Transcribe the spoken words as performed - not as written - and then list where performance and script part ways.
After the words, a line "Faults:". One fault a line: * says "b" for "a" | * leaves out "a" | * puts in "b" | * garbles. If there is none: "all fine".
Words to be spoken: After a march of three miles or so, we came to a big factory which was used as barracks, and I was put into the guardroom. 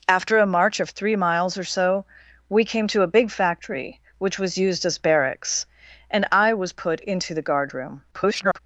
After a march of three miles or so, we came to a big factory which was used as barracks, and I was put into the guardroom. [garbled]
Faults:
* garbles